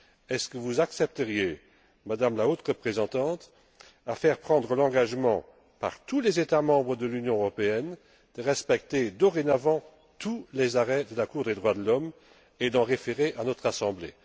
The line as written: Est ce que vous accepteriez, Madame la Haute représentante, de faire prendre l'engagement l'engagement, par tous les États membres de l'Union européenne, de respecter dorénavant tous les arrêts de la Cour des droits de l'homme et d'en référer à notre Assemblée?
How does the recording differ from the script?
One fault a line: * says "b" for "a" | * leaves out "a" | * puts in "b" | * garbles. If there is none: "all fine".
* leaves out "l'engagement"